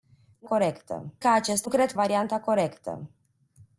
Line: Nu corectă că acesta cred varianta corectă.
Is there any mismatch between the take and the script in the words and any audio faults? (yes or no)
no